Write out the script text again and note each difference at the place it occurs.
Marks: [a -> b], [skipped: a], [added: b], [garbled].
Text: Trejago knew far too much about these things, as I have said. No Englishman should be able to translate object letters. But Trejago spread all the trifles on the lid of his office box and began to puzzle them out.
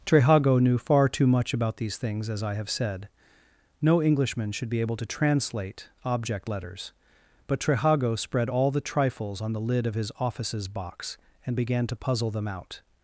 Trejago knew far too much about these things, as I have said. No Englishman should be able to translate object letters. But Trejago spread all the trifles on the lid of his [office -> offices] box and began to puzzle them out.